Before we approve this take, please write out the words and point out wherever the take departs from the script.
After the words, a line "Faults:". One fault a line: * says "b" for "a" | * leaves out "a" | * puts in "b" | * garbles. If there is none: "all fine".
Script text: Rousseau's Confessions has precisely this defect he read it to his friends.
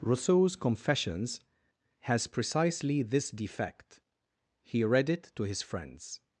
Rousseau's Confessions has precisely this defect he read it to his friends.
Faults:
all fine